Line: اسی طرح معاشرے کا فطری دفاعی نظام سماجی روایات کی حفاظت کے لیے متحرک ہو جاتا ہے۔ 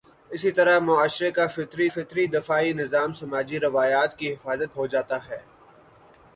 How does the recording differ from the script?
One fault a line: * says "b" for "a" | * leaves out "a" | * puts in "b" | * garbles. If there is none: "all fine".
* puts in "فطری"
* leaves out "کے لیے متحرک"